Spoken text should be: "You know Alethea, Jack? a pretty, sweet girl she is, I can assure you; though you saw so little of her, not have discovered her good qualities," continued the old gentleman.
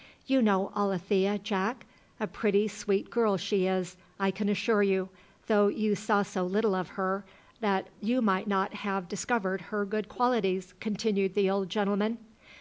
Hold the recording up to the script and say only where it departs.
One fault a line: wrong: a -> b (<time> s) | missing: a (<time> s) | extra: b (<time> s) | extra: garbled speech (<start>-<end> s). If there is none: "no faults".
extra: that you might (7.6 s)